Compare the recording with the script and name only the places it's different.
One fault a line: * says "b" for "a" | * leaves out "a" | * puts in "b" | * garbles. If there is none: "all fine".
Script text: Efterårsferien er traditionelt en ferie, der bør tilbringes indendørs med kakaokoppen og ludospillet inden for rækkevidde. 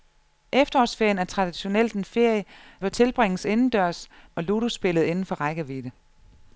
* leaves out "der"
* leaves out "med kakaokoppen"